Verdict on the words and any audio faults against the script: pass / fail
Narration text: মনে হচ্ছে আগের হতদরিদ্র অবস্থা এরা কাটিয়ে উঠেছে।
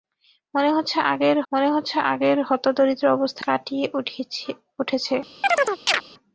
fail